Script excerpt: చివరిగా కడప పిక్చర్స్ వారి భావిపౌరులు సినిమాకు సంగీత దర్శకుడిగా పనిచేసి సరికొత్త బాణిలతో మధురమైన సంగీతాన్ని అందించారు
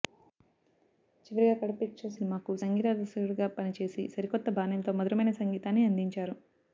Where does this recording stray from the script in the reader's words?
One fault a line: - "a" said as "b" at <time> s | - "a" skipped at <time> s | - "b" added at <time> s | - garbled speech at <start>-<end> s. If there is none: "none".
- "వారి భావిపౌరులు" skipped at 2.2 s